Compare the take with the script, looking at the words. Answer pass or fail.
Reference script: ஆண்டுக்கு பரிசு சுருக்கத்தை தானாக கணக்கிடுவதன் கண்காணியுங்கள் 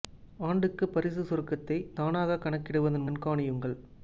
pass